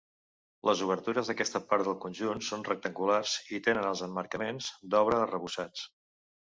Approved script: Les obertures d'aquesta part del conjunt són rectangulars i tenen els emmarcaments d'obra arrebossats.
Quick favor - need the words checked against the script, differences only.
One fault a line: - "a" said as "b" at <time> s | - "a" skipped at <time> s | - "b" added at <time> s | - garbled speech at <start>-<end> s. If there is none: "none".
none